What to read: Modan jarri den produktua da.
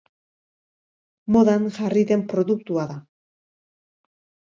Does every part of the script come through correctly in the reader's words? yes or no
yes